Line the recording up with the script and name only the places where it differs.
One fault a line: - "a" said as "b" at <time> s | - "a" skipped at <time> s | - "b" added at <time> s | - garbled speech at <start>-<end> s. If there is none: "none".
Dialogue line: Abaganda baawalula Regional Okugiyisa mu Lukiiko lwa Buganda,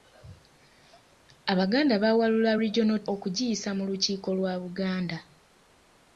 none